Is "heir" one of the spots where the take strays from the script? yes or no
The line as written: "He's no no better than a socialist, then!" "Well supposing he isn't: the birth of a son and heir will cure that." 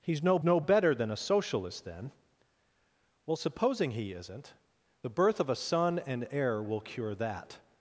no